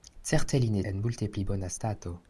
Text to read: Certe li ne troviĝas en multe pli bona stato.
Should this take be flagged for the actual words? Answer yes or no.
yes